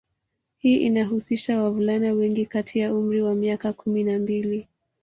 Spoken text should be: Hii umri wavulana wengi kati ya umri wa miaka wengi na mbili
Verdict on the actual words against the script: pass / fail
fail